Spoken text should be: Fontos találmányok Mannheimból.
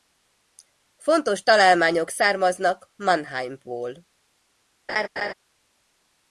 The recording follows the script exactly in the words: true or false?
false